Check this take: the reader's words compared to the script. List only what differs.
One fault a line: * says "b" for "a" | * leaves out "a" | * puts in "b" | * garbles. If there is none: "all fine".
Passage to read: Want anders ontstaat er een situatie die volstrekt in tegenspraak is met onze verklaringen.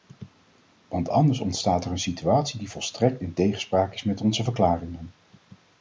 all fine